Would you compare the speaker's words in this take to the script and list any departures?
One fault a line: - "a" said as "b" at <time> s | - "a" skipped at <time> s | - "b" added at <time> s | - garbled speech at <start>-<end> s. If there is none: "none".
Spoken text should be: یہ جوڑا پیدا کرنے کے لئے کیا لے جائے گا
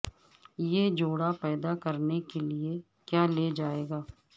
none